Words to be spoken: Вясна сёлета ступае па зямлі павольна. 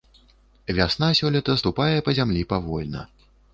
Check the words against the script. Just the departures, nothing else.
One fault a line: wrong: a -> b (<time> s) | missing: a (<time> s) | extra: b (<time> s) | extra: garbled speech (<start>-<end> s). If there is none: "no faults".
no faults